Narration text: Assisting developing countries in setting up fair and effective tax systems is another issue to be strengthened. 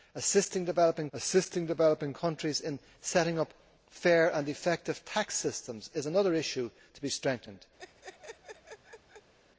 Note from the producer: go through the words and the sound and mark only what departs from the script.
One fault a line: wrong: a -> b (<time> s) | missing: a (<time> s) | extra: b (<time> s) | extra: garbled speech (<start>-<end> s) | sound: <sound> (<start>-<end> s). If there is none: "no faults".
extra: assisting developing (1.1 s)
sound: laugh (7.8-9.3 s)